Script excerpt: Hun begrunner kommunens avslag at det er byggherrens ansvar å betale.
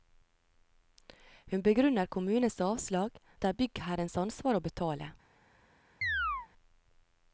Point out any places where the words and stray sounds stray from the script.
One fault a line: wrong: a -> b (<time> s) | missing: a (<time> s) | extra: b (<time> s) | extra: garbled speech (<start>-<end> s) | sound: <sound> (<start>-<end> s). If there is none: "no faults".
sound: chirp (6.0-6.5 s)